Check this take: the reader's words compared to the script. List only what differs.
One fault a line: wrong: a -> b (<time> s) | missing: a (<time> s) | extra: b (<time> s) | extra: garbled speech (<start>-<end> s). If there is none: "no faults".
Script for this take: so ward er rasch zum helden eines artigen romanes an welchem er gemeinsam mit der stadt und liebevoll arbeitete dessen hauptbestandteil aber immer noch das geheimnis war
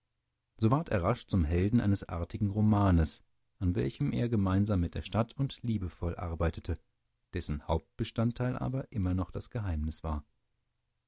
no faults